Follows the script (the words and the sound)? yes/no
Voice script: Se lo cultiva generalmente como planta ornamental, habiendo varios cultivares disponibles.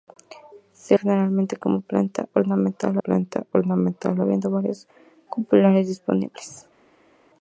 no